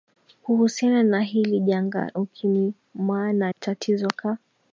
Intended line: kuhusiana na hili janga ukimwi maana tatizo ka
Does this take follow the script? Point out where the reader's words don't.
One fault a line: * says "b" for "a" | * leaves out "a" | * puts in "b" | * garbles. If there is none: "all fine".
all fine